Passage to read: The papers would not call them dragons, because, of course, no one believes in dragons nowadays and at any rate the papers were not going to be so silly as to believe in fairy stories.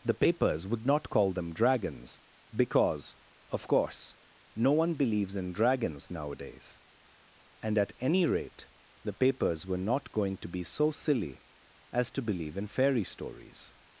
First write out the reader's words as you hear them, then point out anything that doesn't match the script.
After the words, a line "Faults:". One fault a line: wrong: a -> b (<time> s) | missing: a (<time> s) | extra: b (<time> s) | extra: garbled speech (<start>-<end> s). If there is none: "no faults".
The papers would not call them dragons, because, of course, no one believes in dragons nowadays and at any rate the papers were not going to be so silly as to believe in fairy stories.
Faults:
no faults